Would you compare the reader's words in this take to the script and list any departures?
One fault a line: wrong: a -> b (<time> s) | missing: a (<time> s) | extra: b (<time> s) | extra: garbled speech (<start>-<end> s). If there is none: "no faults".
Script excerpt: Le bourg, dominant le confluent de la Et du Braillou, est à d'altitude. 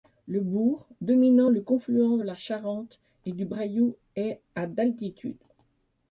extra: Charente (2.3 s)